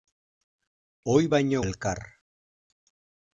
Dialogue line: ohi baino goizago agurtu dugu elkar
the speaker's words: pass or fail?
fail